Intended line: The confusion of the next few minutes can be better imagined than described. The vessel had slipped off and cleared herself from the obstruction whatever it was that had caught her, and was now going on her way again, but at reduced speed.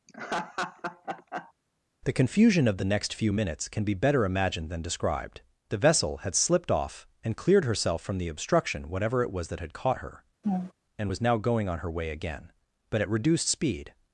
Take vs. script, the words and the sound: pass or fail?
fail